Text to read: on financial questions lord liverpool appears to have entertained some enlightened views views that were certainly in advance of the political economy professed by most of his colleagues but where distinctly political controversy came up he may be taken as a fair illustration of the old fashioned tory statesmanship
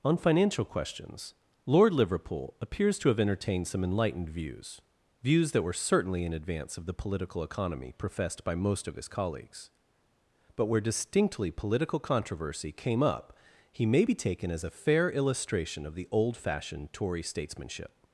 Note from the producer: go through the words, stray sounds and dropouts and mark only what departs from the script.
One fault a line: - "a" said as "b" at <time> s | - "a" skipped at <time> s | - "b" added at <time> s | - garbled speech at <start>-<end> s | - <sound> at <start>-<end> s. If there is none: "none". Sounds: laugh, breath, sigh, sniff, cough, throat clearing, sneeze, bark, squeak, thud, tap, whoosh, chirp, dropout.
none